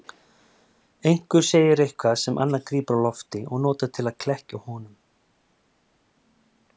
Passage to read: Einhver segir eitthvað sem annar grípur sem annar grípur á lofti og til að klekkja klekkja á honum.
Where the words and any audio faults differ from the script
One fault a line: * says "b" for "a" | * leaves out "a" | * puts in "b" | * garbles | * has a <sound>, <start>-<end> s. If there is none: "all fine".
* leaves out "sem annar grípur"
* puts in "notar"
* leaves out "klekkja"